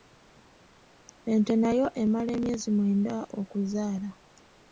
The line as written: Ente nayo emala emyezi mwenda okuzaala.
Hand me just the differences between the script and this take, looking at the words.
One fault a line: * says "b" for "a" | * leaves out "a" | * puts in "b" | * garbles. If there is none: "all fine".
all fine